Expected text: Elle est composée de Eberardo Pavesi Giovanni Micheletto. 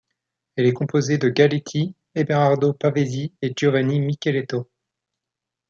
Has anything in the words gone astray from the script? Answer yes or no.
yes